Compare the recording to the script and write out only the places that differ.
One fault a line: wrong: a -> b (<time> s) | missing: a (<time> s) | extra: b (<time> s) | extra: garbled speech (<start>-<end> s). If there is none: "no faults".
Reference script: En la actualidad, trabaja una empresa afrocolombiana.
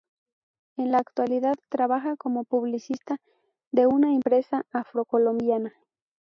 extra: como publicista de (2.2 s)